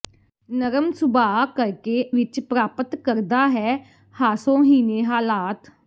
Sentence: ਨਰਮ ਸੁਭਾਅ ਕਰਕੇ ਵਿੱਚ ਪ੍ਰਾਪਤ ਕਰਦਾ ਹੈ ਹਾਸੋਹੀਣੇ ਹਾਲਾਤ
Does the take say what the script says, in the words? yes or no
yes